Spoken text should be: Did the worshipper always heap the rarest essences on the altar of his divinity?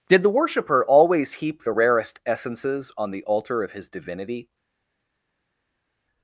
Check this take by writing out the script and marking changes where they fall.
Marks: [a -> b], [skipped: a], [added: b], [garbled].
Did the worshipper always heap the rarest essences on the altar of his divinity?